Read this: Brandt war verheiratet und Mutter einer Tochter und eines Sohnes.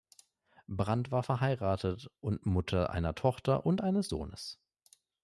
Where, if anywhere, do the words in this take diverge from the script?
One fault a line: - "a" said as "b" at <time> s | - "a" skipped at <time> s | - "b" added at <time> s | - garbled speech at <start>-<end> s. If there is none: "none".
none